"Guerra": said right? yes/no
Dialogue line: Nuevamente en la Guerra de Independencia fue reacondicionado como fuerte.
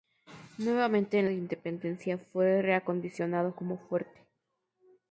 no